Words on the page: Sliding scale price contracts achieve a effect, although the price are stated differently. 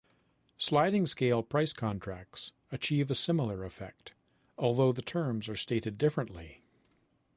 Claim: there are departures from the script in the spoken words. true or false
true